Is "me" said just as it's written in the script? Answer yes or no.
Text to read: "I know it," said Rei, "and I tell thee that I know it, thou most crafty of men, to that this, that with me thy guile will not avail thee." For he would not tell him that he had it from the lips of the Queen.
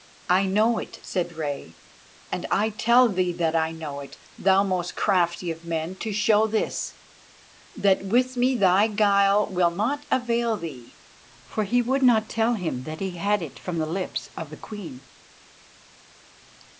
yes